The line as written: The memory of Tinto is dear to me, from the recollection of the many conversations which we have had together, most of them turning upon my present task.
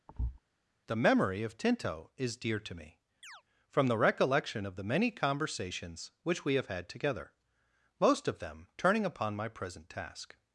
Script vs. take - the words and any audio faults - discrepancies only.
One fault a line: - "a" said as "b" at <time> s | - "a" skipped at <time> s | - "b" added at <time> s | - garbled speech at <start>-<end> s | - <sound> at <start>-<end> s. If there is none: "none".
- thud at 0.1-0.4 s
- chirp at 3.2-3.4 s